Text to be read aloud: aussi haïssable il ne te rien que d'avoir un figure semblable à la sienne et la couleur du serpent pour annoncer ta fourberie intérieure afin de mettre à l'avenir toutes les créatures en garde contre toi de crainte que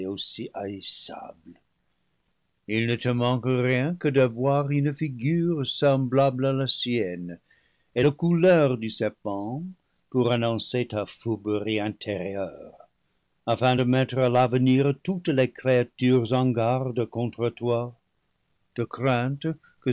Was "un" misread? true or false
true